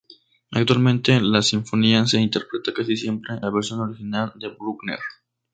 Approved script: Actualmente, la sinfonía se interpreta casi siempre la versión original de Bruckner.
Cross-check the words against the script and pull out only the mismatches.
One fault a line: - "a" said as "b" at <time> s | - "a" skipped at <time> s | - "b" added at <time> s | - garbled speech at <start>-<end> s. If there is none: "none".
none